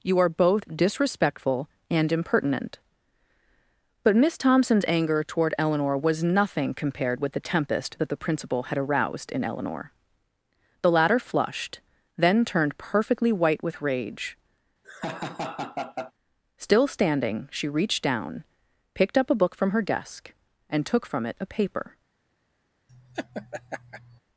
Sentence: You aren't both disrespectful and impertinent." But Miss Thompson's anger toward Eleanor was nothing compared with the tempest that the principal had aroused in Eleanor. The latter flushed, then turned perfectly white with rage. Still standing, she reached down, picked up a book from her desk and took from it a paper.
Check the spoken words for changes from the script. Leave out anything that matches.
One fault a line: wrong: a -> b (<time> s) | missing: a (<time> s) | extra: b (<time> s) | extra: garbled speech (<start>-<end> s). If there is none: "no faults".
wrong: aren't -> are (0.2 s)